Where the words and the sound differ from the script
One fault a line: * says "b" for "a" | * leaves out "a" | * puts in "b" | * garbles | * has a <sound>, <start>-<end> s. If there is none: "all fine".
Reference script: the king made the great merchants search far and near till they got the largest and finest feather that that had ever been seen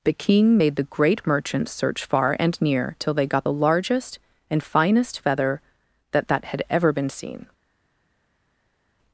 all fine